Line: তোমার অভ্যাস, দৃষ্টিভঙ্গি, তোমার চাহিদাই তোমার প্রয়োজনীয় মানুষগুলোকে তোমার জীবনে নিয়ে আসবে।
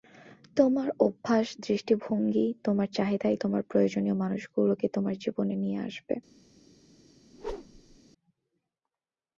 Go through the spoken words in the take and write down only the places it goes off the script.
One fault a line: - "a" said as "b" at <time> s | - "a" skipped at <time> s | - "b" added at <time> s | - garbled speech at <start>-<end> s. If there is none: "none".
none